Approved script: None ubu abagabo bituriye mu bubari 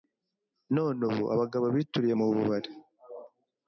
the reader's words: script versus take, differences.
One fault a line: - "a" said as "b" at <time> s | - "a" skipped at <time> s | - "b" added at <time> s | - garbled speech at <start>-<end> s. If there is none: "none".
none